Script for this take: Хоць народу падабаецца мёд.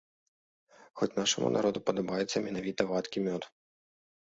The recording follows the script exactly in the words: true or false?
false